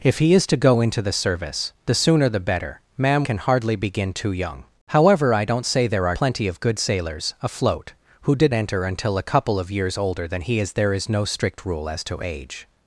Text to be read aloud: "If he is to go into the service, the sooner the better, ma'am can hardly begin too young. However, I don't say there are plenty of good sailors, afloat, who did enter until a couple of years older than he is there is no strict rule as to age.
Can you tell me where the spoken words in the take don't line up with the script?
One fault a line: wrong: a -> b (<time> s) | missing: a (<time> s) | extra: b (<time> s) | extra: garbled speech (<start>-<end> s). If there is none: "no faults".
no faults